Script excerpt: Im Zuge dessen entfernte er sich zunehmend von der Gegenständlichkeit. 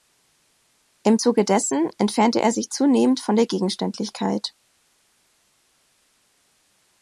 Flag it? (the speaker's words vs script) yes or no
no